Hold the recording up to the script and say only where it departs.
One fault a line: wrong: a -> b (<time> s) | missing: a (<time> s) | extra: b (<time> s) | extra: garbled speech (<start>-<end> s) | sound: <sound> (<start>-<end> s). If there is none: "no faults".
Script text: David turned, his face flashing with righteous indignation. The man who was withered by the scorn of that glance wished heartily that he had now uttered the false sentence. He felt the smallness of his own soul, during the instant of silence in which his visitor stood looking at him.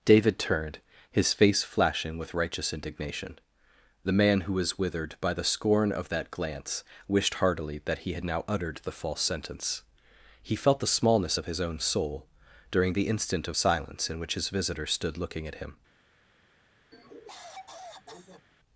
sound: cough (16.9-18.5 s)